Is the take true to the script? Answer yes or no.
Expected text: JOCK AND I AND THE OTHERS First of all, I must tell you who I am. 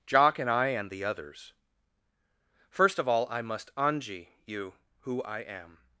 no